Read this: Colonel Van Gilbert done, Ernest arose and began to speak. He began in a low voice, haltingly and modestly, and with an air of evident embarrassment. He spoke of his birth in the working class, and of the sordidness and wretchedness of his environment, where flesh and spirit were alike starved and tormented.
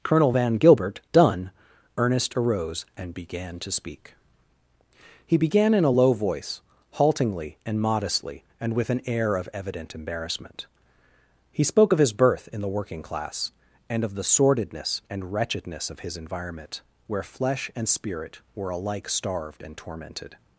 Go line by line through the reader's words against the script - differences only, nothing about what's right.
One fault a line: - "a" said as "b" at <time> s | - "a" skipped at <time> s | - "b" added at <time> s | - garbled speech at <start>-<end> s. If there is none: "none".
none